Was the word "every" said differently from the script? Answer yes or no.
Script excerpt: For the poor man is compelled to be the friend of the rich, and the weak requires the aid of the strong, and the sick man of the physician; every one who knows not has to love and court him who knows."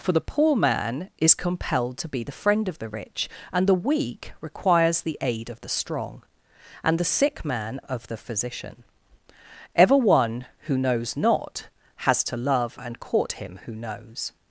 yes